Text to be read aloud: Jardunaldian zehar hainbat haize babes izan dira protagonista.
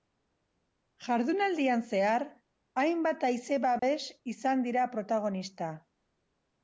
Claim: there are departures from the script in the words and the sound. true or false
true